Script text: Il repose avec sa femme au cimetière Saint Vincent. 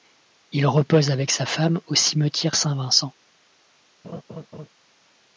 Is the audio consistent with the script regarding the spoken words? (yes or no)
yes